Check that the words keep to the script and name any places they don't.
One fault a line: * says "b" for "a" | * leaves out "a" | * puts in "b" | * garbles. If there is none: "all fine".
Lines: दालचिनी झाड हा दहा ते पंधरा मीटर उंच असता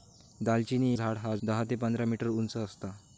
all fine